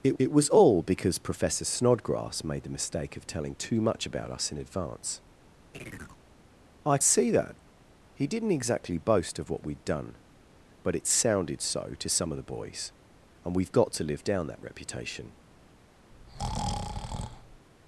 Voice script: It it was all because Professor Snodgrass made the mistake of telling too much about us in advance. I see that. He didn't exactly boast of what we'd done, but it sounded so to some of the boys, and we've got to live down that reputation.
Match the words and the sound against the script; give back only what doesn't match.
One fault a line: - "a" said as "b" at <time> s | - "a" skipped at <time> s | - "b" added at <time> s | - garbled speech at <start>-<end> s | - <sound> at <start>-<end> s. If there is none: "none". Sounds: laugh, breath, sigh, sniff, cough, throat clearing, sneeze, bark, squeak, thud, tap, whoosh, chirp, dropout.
- chirp at 5.7-6.2 s
- breath at 16.1-17.7 s